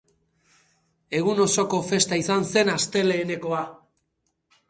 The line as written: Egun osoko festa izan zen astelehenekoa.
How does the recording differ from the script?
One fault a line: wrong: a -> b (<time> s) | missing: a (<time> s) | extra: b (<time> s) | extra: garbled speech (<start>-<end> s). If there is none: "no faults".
no faults